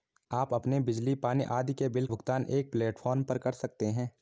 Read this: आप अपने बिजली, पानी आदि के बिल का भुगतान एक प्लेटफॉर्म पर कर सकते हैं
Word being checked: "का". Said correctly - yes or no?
no